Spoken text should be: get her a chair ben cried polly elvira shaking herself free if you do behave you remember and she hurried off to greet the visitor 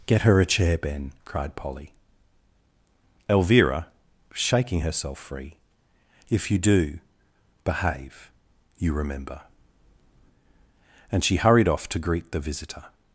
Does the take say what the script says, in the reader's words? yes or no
yes